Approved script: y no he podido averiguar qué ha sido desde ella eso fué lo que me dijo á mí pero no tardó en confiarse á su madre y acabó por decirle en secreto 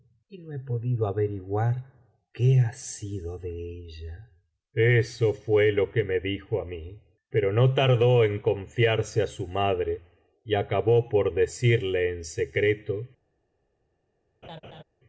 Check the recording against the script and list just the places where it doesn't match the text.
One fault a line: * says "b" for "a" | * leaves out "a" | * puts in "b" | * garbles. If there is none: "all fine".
* says "de" for "desde"